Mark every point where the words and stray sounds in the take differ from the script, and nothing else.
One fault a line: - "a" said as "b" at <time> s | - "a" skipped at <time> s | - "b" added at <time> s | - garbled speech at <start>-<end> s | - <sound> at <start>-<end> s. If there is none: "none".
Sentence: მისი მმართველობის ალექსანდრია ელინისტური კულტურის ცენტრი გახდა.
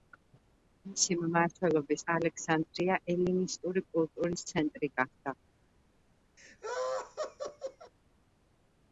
- laugh at 6.4-7.9 s